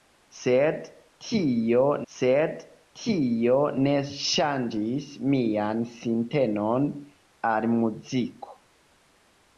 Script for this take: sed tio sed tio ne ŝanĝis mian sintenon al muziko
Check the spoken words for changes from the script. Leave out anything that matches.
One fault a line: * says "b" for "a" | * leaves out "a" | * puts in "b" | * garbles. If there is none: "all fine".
all fine